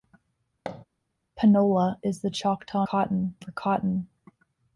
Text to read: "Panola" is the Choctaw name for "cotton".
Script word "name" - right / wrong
wrong